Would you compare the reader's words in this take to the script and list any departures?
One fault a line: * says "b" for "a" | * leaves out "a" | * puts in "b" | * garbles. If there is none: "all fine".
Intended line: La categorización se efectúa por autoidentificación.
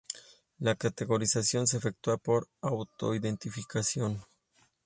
all fine